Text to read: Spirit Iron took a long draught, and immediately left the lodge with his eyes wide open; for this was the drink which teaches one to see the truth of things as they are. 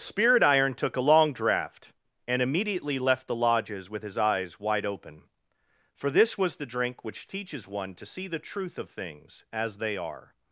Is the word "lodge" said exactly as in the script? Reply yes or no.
no